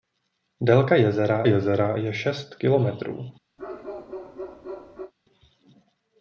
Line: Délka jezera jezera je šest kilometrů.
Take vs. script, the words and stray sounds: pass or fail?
fail